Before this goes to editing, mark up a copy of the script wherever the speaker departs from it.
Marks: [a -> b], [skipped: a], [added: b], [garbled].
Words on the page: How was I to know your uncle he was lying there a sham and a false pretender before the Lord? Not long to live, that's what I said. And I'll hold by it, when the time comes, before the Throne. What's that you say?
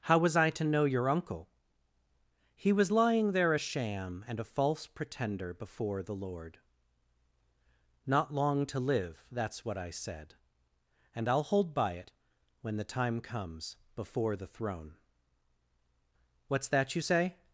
How was I to know your uncle he was lying there a sham and a false pretender before the Lord? Not long to live, that's what I said. And I'll hold by it, when the time comes, before the Throne. What's that you say?